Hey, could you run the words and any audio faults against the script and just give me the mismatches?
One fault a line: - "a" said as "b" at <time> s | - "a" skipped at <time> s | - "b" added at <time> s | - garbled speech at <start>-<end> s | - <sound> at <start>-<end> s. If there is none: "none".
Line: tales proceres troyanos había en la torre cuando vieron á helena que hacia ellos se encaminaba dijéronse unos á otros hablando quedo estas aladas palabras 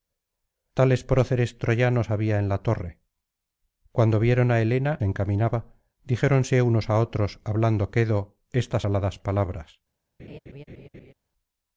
- "que hacia ellos" skipped at 4.9 s
- laugh at 10.2-11.1 s